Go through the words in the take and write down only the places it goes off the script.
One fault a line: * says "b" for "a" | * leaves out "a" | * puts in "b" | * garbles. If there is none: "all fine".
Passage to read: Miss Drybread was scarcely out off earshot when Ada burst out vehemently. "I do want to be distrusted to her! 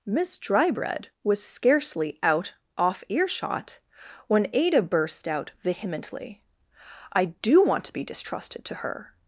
all fine